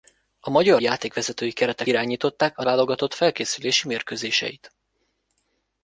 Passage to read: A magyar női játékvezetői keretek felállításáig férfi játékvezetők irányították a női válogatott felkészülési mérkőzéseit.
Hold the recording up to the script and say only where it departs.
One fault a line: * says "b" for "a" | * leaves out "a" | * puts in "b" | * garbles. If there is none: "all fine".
* leaves out "női"
* leaves out "felállításáig férfi játékvezetők"
* leaves out "női"